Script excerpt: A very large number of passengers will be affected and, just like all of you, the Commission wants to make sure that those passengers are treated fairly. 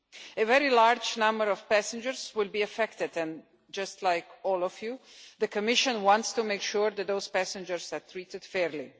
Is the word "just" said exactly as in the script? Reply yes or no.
yes